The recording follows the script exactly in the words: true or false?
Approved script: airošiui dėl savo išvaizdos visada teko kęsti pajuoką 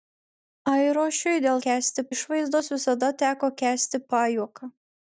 false